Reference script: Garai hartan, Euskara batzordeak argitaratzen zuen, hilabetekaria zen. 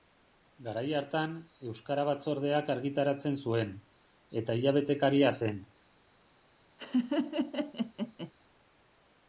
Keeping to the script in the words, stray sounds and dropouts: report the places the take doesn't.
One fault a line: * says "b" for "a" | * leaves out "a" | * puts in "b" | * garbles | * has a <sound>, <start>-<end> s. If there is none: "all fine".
* puts in "eta"
* has a laugh, 6.8-8.3 s